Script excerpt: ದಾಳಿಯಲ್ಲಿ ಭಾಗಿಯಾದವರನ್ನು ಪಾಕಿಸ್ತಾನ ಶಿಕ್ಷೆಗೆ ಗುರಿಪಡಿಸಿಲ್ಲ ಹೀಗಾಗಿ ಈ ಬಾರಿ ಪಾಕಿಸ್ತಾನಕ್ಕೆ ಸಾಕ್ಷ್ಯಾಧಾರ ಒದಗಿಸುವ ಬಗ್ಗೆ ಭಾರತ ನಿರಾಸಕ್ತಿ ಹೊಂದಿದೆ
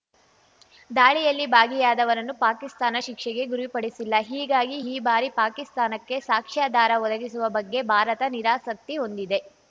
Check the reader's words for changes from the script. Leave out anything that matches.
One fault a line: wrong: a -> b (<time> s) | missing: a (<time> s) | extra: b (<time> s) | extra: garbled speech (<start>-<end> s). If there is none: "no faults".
no faults